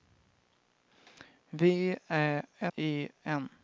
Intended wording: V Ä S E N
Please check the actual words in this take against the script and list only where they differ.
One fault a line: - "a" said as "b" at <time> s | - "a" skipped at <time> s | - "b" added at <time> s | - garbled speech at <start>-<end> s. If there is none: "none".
- "S" skipped at 2.4 s